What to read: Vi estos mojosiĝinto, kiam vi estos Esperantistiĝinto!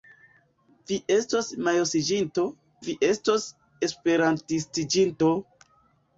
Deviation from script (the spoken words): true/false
true